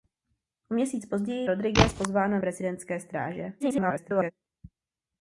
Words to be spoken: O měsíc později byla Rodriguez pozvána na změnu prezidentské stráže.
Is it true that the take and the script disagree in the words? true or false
true